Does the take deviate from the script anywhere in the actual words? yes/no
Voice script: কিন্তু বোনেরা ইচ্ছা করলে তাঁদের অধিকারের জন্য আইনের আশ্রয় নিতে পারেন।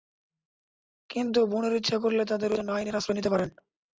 yes